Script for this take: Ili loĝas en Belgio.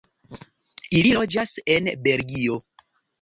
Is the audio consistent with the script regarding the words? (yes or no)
yes